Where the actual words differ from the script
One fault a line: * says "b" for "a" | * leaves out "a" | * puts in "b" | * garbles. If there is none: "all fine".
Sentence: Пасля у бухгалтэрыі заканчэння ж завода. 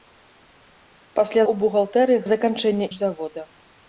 all fine